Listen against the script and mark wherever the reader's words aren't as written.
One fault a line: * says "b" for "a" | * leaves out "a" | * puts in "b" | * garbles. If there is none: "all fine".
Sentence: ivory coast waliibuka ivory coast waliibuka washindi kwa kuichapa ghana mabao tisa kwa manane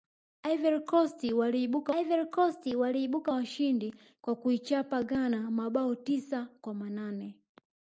all fine